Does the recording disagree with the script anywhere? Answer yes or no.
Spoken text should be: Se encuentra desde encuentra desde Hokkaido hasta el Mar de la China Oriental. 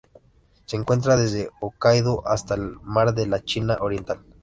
yes